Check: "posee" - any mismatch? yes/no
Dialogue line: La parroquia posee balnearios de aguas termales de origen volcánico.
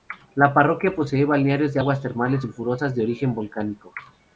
no